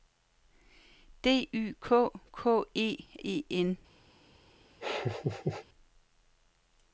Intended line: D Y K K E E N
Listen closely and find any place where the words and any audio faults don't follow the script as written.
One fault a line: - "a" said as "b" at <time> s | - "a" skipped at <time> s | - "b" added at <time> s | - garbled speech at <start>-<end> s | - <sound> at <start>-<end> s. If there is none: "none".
- laugh at 4.8-5.7 s